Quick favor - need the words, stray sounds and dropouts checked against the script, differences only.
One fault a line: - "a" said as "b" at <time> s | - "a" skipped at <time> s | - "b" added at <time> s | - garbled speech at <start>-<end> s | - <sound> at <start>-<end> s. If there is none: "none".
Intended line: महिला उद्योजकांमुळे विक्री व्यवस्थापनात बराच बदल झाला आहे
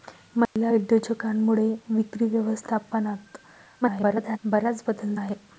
- dropout at 0.5-0.6 s
- garbled speech at 3.8-4.4 s
- "झाला" skipped at 5.1 s